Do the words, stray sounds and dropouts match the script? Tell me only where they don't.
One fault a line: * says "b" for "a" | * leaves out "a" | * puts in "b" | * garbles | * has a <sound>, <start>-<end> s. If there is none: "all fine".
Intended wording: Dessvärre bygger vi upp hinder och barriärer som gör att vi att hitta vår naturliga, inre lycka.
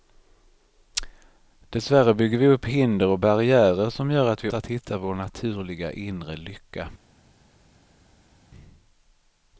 all fine